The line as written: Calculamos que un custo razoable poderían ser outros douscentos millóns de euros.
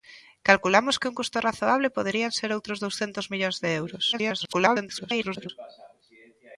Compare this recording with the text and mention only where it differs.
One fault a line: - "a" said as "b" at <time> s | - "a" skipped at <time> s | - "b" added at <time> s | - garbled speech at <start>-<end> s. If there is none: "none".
- garbled speech at 4.1-5.5 s